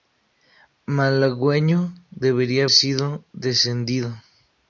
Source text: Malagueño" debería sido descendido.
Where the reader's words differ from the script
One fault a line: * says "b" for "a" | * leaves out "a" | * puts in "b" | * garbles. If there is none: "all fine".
all fine